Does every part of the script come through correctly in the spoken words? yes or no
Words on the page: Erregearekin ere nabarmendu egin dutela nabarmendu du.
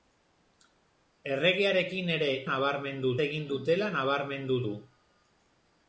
yes